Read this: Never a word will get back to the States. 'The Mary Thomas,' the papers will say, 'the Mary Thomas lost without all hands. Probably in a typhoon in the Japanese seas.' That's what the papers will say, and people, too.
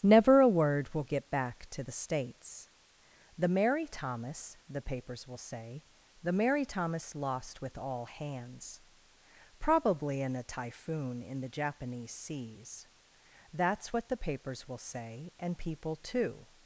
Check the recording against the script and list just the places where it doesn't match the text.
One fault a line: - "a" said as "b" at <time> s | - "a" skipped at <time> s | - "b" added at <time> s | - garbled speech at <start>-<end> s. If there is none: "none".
- "without" said as "with" at 7.6 s